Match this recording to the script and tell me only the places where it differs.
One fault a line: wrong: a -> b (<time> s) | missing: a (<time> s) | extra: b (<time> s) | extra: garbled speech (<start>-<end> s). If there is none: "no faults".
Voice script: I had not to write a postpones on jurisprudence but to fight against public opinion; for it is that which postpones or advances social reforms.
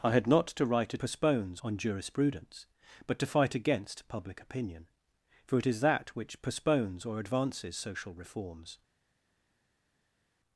no faults